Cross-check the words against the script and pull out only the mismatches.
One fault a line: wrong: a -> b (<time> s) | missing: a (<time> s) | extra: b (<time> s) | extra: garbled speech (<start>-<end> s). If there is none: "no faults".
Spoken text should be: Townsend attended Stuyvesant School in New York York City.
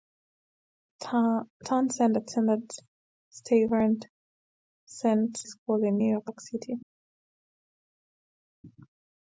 no faults